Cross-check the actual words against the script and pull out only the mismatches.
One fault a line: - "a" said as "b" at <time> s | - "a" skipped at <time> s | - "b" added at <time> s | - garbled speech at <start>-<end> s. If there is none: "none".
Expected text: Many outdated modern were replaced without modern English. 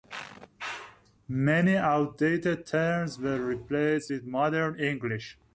- "modern" said as "terms" at 2.6 s
- "without" said as "with" at 4.1 s